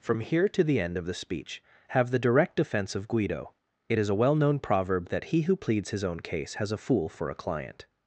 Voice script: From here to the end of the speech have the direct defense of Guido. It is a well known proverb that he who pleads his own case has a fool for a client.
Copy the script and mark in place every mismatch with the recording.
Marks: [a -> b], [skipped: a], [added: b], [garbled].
From here to the end of the speech have the direct defense of Guido. It is a well known proverb that he who pleads his own case has a fool for a client.